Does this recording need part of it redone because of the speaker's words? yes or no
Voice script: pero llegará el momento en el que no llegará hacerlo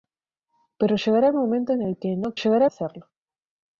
no